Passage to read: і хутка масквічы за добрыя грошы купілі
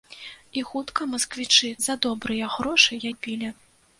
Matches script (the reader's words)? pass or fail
pass